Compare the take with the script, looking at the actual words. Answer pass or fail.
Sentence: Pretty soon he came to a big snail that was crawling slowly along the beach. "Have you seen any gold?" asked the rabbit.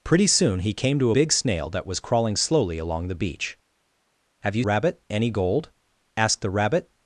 fail